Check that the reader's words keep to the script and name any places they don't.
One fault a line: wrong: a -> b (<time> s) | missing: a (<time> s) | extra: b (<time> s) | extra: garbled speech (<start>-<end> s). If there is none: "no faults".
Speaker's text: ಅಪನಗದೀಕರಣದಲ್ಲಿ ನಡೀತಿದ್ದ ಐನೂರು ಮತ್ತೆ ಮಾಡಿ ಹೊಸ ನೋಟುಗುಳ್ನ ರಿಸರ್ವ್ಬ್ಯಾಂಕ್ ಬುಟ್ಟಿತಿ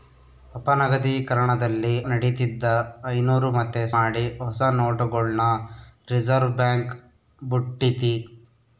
no faults